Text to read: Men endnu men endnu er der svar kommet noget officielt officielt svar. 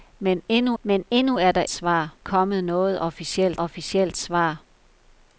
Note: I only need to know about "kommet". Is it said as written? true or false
true